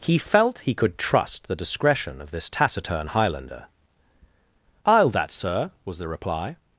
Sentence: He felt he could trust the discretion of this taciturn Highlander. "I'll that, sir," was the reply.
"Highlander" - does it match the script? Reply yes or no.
yes